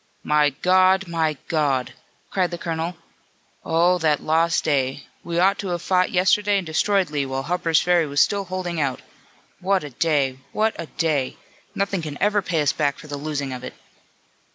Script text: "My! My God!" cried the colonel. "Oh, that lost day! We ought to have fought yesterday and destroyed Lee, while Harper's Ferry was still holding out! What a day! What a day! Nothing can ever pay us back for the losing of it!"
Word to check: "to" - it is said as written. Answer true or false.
true